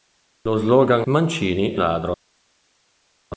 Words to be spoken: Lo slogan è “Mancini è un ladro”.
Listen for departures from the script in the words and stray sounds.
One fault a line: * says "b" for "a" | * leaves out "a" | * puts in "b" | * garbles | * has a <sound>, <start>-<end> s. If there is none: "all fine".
* leaves out "è"
* leaves out "un"